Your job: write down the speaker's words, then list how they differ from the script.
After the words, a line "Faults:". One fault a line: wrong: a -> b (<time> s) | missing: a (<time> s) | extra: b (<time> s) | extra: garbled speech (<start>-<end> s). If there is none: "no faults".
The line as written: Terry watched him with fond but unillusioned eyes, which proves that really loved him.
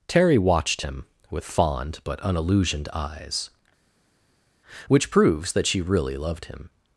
Terry watched him with fond but unillusioned eyes, which proves that she really loved him.
Faults:
extra: she (5.7 s)